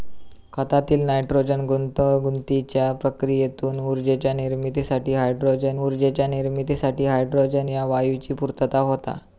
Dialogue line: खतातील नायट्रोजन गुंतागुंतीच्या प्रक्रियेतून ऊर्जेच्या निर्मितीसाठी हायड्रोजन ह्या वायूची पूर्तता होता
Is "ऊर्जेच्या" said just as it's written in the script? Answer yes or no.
yes